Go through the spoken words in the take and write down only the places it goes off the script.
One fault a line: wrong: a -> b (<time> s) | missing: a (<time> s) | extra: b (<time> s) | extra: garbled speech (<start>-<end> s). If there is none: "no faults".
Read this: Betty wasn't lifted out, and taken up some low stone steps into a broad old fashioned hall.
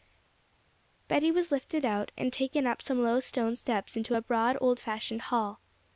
wrong: wasn't -> was (1.3 s)